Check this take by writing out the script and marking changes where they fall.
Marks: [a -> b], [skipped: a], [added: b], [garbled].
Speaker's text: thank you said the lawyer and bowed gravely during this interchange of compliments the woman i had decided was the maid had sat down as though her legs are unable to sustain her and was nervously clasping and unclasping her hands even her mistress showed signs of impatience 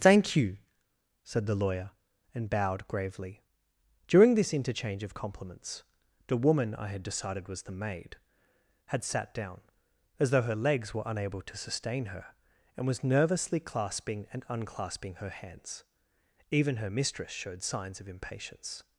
thank you said the lawyer and bowed gravely during this interchange of compliments the woman i had decided was the maid had sat down as though her legs [are -> were] unable to sustain her and was nervously clasping and unclasping her hands even her mistress showed signs of impatience